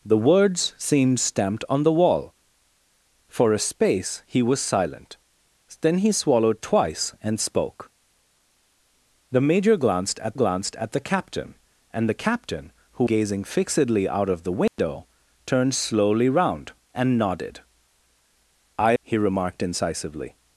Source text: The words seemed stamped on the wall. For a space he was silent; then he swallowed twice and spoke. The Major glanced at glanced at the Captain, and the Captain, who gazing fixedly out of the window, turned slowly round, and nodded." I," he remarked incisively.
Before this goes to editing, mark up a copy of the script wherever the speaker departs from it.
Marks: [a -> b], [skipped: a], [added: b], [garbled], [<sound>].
The words seemed stamped on the wall. For a space he was silent; then he swallowed twice and spoke. The Major glanced at glanced at the Captain, and the Captain, who gazing fixedly out of the window, [dropout] turned slowly round, and nodded." I," he remarked incisively.